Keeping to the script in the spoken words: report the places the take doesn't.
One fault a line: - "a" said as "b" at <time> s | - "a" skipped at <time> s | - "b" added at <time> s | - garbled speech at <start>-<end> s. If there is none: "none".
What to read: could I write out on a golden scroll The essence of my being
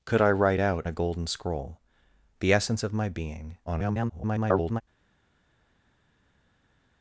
- "on" skipped at 0.8 s
- garbled speech at 3.7-4.8 s